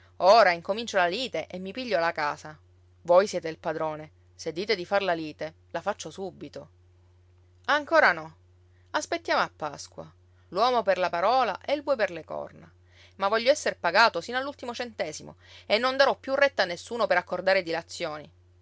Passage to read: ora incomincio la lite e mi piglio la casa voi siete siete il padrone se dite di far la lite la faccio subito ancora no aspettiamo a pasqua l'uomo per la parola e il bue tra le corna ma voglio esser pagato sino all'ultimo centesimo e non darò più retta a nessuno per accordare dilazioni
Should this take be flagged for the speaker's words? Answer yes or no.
yes